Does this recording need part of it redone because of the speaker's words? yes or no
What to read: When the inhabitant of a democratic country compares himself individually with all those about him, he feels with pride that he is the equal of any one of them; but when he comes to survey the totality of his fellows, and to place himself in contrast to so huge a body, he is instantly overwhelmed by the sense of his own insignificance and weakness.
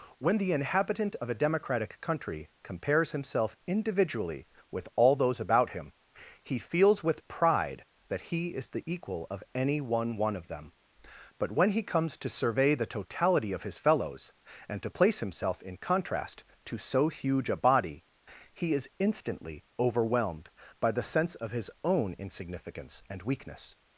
yes